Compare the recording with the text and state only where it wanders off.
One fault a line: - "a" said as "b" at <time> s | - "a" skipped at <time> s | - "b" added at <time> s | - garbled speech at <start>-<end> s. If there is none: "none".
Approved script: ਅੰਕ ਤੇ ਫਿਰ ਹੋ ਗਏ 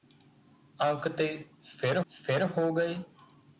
- "ਫਿਰ" added at 2.1 s